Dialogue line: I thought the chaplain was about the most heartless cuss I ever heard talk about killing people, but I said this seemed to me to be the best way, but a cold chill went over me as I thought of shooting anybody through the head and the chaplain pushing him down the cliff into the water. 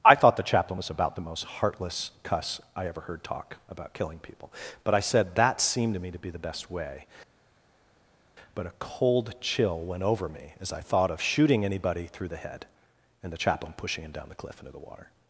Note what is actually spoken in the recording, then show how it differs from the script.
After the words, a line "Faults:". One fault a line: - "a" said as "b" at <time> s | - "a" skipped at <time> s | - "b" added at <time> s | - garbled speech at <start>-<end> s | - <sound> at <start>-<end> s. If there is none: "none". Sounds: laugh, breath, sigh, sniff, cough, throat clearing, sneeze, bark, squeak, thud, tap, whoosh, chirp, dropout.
I thought the chaplain was about the most heartless cuss I ever heard talk about killing people, but I said that seemed to me to be the best way, but a cold chill went over me as I thought of shooting anybody through the head and the chaplain pushing him down the cliff into the water.
Faults:
- "this" said as "that" at 5.4 s